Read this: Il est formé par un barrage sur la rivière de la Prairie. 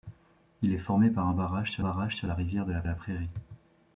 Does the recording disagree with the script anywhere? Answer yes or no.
yes